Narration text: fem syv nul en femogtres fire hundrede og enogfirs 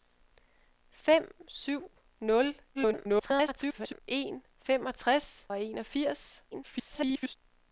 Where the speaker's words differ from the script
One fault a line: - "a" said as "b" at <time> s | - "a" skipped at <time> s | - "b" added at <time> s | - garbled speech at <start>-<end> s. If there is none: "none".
- garbled speech at 2.7-4.0 s
- "fire hundrede" skipped at 5.5 s
- garbled speech at 6.5-7.4 s